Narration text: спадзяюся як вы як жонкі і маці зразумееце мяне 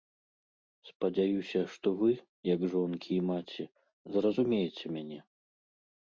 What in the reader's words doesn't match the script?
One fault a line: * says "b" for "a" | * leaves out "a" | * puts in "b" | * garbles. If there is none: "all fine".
* says "што" for "як"